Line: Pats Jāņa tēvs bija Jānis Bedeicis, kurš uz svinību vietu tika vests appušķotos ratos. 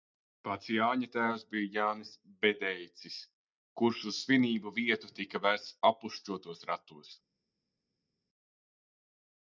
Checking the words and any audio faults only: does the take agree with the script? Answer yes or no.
yes